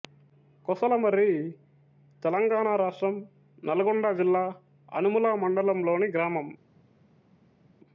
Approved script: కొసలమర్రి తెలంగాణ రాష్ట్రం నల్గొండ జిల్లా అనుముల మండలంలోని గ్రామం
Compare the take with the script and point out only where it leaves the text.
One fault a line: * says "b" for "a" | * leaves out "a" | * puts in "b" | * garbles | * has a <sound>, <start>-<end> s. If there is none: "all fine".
all fine